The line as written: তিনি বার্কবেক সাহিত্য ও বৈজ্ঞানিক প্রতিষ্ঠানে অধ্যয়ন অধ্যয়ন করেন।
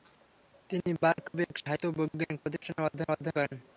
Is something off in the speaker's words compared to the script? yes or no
no